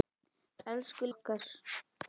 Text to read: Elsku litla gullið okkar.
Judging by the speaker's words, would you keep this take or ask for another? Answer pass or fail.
fail